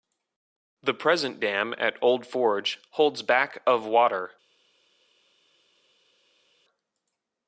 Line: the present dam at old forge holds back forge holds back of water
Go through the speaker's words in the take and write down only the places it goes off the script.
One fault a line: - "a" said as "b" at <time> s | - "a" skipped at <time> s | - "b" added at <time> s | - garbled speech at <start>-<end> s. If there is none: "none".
- "forge holds back" skipped at 3.6 s